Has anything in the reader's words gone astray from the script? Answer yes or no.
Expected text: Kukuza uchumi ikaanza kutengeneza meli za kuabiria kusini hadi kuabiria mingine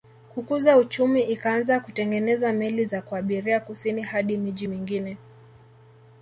yes